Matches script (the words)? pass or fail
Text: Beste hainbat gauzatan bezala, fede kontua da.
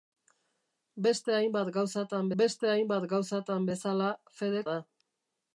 fail